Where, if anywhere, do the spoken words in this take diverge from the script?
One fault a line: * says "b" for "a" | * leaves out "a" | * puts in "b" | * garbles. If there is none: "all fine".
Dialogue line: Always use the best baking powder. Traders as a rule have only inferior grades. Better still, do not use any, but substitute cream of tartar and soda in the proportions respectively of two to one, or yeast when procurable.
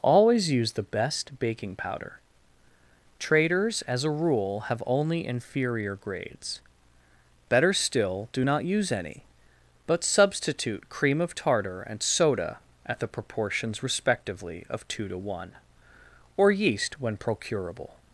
* says "at" for "in"